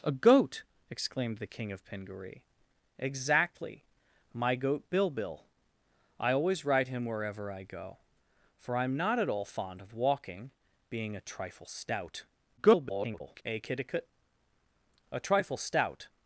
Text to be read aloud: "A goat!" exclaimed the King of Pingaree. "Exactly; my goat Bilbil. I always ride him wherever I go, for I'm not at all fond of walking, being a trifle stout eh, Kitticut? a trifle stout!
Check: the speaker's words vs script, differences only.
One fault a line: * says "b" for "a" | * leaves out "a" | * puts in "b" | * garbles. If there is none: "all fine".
* garbles